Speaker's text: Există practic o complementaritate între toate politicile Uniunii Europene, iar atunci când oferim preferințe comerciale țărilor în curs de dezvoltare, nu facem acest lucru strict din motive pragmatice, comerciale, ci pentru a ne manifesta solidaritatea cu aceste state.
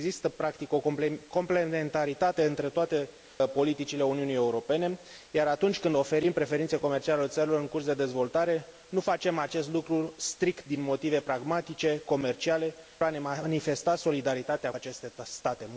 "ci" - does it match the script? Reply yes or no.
no